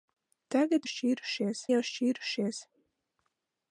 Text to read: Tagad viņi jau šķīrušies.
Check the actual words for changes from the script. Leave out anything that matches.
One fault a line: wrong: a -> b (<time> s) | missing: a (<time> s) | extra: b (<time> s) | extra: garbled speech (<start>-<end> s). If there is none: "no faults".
wrong: viņi -> šķīrušies (0.9 s)